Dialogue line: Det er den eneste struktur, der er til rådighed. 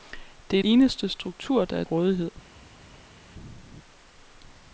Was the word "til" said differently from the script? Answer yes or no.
yes